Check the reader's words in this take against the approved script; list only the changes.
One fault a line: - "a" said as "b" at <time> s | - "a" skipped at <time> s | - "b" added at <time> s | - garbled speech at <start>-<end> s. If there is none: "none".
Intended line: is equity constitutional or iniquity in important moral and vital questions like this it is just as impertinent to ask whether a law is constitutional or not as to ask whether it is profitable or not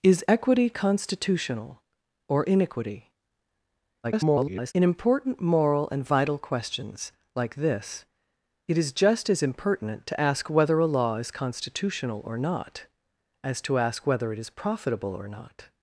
- garbled speech at 4.0-4.7 s